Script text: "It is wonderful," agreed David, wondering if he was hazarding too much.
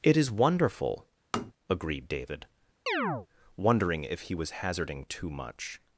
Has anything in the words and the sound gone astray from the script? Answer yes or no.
yes